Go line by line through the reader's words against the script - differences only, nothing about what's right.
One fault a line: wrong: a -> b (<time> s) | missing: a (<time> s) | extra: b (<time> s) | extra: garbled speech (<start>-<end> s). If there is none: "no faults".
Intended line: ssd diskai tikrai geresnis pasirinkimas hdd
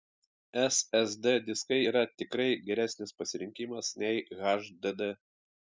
extra: yra (1.9 s)
extra: nei (4.0 s)